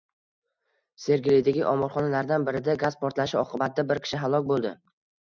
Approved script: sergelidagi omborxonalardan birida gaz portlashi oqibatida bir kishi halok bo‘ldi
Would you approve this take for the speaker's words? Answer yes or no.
yes